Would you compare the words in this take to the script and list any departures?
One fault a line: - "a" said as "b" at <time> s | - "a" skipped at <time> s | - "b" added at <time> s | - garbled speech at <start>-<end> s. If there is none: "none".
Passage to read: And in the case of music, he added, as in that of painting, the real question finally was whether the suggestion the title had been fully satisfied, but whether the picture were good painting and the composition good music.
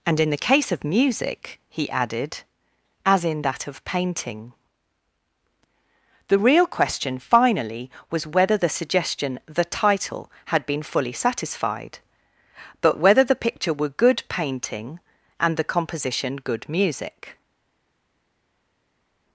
none